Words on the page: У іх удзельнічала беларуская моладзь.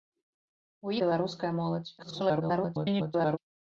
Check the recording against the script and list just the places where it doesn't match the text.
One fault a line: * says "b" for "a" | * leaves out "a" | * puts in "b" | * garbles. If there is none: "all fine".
* leaves out "іх удзельнічала"
* garbles